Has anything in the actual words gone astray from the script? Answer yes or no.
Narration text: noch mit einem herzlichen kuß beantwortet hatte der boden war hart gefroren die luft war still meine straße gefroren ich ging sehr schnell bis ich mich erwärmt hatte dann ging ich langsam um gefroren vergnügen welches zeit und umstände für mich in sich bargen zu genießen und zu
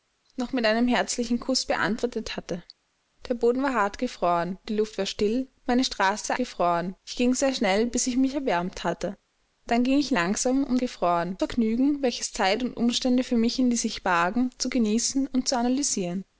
no